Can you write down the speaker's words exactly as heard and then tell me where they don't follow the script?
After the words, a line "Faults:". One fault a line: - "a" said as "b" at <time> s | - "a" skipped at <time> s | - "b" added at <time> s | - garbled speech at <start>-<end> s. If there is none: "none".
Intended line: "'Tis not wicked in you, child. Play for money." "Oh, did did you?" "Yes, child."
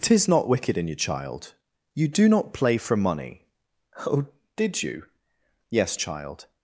"'Tis not wicked in you, child. You do not play for money." "Oh, did you?" "Yes, child."
Faults:
- "You do not" added at 1.9 s
- "did" skipped at 4.8 s